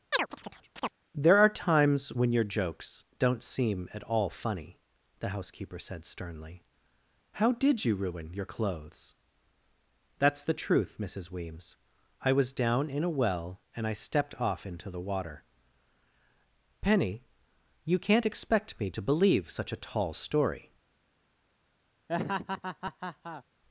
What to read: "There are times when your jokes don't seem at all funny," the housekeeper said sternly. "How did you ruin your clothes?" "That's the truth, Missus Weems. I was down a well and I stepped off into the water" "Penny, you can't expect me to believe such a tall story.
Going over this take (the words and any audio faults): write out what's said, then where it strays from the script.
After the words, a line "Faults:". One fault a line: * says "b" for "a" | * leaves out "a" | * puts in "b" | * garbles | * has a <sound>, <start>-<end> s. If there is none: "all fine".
"There are times when your jokes don't seem at all funny," the housekeeper said sternly. "How did you ruin your clothes?" "That's the truth, Missus Weems. I was down in a well and I stepped off into the water" "Penny, you can't expect me to believe such a tall story.
Faults:
* has a chirp, 0.1-0.9 s
* puts in "in"
* has a laugh, 22.1-23.4 s